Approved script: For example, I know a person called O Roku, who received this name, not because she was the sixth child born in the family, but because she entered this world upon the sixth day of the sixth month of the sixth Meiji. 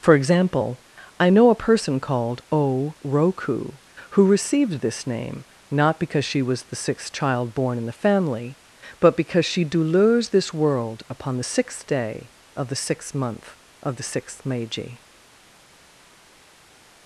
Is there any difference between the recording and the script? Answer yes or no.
yes